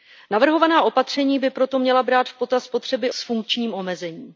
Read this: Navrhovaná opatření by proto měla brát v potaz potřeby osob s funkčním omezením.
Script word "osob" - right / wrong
wrong